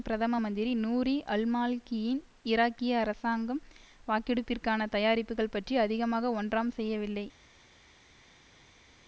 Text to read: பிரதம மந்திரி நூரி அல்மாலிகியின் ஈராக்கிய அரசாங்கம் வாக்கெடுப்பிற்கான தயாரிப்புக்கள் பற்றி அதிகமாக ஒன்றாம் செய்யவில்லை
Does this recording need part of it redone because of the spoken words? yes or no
no